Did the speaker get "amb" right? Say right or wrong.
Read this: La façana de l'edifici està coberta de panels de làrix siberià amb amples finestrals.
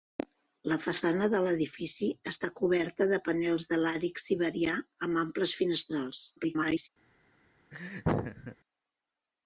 right